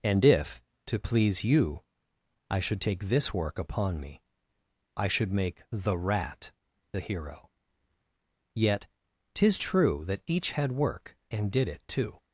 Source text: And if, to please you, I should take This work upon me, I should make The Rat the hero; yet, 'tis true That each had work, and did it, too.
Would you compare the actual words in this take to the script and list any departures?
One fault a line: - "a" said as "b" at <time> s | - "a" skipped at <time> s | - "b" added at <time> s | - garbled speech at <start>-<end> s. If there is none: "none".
none